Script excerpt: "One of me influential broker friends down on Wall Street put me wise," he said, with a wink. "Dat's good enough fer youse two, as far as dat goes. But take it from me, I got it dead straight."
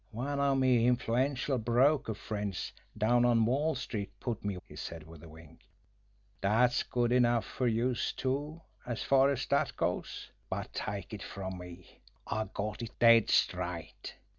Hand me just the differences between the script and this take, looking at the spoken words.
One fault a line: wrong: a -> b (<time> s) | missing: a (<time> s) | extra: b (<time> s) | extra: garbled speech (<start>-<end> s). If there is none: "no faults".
missing: wise (4.6 s)